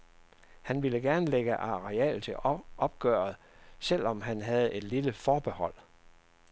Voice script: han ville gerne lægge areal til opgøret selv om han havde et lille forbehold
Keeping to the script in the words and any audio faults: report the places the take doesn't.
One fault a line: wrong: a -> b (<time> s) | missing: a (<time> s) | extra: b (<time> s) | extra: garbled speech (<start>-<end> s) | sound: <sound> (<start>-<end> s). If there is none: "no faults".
no faults